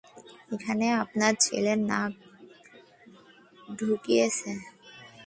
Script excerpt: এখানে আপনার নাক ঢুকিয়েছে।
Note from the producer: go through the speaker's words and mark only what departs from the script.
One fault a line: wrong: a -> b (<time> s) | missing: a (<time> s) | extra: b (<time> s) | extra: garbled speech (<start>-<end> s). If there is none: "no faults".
extra: ছেলে (1.4 s)